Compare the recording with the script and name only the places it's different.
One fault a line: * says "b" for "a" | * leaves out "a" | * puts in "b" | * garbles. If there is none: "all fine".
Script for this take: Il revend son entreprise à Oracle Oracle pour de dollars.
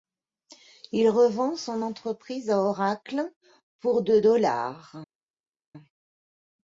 * leaves out "Oracle"